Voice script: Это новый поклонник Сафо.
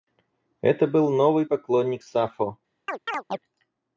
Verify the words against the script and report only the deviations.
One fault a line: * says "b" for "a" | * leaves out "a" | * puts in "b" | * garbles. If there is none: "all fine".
* puts in "был"